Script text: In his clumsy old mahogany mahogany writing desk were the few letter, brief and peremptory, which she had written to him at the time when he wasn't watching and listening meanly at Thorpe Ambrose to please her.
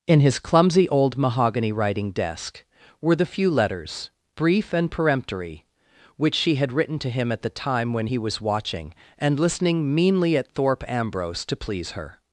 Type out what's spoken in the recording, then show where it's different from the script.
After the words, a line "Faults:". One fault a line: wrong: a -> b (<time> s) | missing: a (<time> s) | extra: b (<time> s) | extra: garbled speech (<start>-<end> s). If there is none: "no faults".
In his clumsy old mahogany writing desk were the few letters, brief and peremptory, which she had written to him at the time when he was watching and listening meanly at Thorpe Ambrose to please her.
Faults:
missing: mahogany (1.7 s)
wrong: letter -> letters (3.5 s)
wrong: wasn't -> was (8.2 s)